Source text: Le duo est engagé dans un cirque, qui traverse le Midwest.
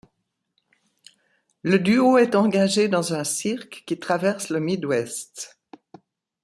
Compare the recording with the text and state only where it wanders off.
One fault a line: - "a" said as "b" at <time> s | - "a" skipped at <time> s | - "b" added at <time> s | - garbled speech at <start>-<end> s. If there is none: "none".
none